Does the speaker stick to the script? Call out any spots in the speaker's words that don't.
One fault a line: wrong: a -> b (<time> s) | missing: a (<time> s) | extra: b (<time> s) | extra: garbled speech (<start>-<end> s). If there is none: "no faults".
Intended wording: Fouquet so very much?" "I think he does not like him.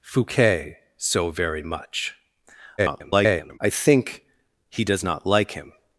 extra: garbled speech (2.8-3.6 s)